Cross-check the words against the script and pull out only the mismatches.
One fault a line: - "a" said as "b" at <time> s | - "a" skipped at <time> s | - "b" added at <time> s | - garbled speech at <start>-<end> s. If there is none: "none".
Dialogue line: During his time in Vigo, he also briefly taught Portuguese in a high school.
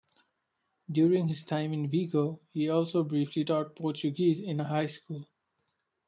none